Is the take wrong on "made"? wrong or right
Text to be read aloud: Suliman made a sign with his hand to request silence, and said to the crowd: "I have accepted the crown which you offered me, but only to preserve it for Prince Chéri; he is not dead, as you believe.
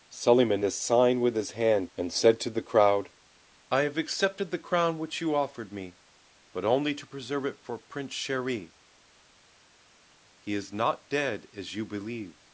wrong